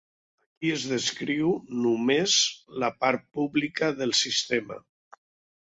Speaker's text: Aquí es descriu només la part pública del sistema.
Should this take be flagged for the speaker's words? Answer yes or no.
no